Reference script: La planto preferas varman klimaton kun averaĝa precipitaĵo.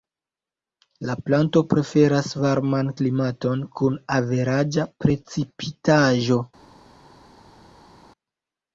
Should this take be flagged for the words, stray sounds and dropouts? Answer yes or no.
no